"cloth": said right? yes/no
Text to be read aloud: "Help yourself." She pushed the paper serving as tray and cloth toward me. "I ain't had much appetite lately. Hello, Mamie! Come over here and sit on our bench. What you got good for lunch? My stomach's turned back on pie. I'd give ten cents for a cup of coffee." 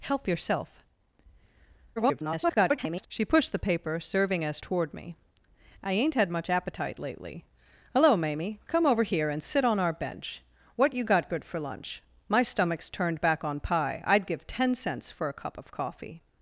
no